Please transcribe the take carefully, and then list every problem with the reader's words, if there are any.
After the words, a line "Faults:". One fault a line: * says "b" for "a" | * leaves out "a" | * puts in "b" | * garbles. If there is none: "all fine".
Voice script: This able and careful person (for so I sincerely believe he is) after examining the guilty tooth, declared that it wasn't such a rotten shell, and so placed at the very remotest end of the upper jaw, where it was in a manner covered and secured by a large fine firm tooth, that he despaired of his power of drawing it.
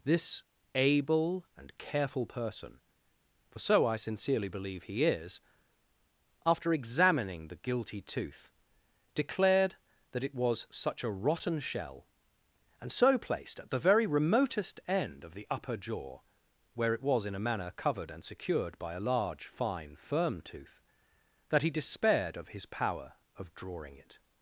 This able and careful person (for so I sincerely believe he is) after examining the guilty tooth, declared that it was such a rotten shell, and so placed at the very remotest end of the upper jaw, where it was in a manner covered and secured by a large fine firm tooth, that he despaired of his power of drawing it.
Faults:
* says "was" for "wasn't"